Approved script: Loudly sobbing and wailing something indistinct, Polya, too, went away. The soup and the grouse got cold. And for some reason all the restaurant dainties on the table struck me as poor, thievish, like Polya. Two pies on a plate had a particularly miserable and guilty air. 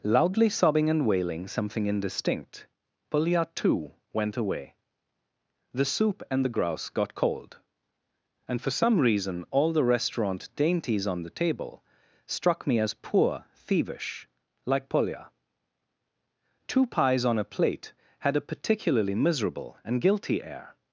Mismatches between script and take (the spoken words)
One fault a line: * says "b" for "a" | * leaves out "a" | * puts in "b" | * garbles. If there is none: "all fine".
all fine